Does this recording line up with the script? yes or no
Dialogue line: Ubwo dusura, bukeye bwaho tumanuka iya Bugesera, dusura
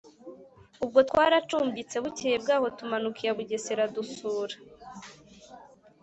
no